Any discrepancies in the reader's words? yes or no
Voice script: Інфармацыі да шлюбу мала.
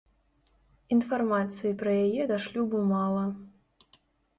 yes